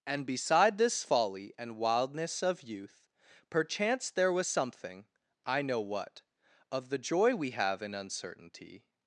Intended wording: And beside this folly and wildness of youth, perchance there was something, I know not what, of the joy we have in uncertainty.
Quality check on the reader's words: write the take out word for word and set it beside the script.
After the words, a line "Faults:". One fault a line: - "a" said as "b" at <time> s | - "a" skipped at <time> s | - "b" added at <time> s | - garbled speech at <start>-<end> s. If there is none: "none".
And beside this folly and wildness of youth, perchance there was something, I know what, of the joy we have in uncertainty.
Faults:
- "not" skipped at 5.8 s